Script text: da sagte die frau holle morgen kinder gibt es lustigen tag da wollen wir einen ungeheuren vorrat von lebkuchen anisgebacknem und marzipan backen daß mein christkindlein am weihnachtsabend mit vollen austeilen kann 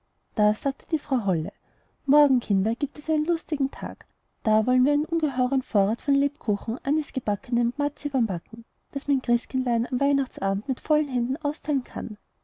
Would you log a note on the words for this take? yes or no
yes